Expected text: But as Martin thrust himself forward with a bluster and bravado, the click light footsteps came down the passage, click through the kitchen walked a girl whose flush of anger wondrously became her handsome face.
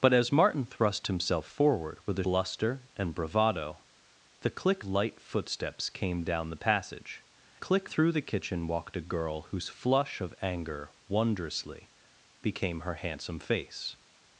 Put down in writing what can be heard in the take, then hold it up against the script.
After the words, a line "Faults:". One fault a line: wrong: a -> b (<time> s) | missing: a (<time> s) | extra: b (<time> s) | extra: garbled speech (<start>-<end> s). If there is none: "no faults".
But as Martin thrust himself forward with a bluster and bravado, the click light footsteps came down the passage, click through the kitchen walked a girl whose flush of anger wondrously became her handsome face.
Faults:
no faults